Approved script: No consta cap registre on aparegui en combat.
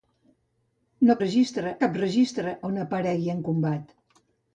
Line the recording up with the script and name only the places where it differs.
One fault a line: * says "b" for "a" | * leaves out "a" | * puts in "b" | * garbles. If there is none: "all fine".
* says "registre" for "consta"